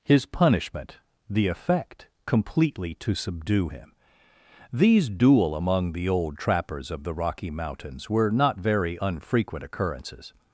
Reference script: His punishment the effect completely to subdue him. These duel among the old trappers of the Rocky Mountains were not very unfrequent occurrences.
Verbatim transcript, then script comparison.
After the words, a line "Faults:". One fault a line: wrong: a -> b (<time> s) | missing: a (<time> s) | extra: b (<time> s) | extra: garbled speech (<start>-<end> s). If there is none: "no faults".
His punishment the effect completely to subdue him. These duel among the old trappers of the Rocky Mountains were not very unfrequent occurrences.
Faults:
no faults